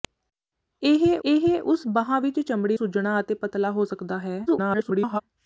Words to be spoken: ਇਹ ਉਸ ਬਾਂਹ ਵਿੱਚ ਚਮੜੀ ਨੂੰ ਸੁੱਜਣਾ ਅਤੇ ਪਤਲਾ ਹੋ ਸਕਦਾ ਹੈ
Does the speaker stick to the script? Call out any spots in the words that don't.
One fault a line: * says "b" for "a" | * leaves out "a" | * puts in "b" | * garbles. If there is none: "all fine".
* puts in "ਇਹ"
* leaves out "ਨੂੰ"
* garbles